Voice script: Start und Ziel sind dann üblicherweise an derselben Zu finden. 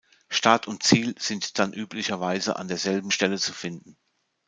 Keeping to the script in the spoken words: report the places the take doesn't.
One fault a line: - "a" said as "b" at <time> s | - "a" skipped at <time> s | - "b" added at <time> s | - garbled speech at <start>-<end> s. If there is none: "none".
- "Stelle" added at 3.1 s